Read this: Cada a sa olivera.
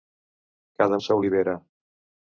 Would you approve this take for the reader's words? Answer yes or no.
yes